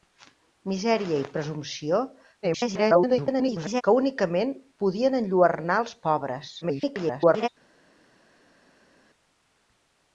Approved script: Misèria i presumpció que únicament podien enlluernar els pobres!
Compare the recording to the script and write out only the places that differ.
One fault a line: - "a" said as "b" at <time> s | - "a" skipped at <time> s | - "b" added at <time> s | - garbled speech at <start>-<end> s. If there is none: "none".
- garbled speech at 2.4-3.8 s
- garbled speech at 6.6-7.5 s